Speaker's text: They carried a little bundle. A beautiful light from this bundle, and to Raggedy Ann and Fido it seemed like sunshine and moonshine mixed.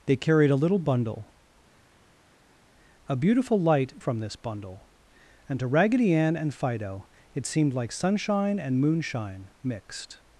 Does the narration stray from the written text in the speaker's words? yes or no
no